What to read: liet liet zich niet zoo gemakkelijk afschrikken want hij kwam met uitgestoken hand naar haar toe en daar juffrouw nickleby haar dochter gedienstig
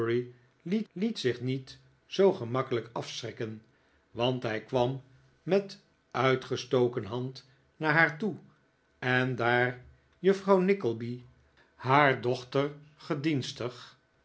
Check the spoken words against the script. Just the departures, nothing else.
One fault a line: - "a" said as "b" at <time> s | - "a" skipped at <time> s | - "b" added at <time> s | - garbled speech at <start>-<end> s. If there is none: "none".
none